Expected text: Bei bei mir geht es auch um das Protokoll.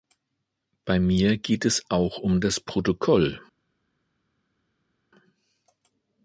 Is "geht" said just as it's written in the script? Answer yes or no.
yes